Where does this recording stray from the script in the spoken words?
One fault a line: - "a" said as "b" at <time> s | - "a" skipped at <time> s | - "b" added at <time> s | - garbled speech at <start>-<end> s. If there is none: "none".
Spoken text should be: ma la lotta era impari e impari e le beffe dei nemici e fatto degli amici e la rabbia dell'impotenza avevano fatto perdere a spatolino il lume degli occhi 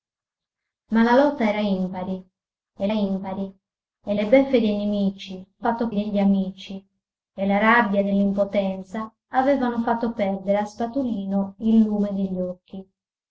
none